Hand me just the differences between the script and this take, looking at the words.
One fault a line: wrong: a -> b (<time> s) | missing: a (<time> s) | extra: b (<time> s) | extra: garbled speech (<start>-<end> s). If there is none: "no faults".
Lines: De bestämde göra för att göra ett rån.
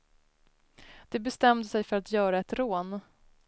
wrong: göra -> sig (1.7 s)